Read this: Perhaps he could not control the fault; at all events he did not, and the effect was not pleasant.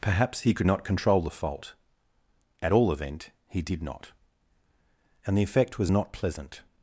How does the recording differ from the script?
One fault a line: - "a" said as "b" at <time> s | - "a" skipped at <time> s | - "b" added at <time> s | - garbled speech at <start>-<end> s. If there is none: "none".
- "events" said as "event" at 2.9 s